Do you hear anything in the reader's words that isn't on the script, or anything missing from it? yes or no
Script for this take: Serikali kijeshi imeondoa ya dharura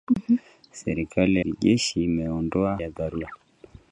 no